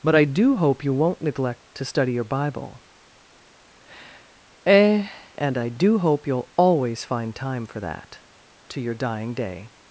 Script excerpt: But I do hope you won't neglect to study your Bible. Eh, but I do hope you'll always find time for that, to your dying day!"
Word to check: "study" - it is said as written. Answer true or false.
true